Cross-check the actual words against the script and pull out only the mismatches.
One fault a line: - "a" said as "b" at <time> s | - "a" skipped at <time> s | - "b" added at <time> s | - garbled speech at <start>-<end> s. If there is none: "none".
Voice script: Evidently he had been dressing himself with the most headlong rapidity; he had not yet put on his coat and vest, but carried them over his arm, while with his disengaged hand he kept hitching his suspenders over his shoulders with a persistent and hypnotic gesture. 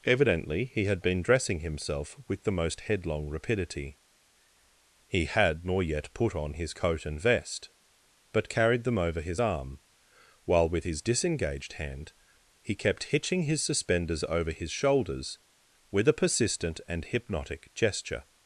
- "not" said as "nor" at 5.6 s